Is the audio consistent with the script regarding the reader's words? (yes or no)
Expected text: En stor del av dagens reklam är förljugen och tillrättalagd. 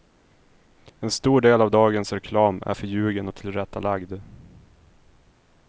yes